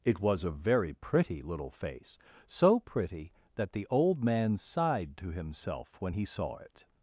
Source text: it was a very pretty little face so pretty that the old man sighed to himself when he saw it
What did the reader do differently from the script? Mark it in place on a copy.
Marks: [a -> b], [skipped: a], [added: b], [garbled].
it was a very pretty little face so pretty that the old man sighed to himself when he saw it